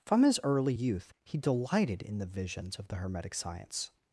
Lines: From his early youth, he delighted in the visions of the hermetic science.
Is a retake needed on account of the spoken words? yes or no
no